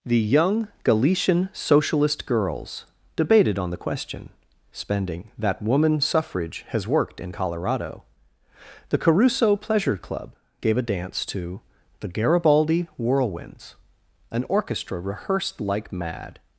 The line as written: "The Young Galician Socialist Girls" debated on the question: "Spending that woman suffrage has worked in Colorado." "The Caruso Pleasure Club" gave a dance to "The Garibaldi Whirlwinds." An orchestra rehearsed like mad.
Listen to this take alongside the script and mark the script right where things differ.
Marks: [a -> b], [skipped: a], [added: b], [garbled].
"The Young Galician Socialist Girls" debated on the question: "Spending that woman suffrage has worked in Colorado." "The Caruso Pleasure Club" gave a dance to "The Garibaldi Whirlwinds." An orchestra rehearsed like mad.